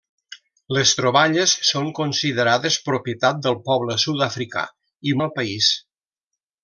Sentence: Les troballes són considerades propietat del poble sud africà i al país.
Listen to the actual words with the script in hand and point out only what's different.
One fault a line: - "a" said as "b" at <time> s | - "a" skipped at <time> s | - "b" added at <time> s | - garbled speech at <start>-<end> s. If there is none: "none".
none